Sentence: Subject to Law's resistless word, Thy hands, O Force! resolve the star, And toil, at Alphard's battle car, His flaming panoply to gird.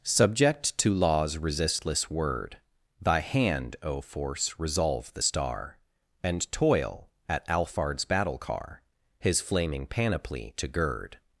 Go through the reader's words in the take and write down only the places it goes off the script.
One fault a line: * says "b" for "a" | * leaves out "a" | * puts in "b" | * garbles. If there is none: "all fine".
* says "hand" for "hands"